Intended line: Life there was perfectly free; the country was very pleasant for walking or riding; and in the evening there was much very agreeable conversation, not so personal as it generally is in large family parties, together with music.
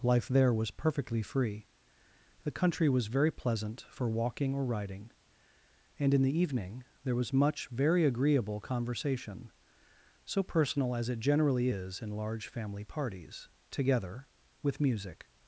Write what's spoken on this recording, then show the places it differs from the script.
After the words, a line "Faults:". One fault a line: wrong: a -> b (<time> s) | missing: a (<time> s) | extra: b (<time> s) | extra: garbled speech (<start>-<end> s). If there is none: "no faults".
Life there was perfectly free; the country was very pleasant for walking or riding; and in the evening there was much very agreeable conversation, so personal as it generally is in large family parties, together with music.
Faults:
missing: not (9.5 s)